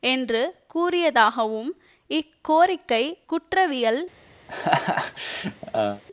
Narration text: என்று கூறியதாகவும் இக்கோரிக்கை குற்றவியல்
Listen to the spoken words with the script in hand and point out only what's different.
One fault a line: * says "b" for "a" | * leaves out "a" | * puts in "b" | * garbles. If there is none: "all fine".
all fine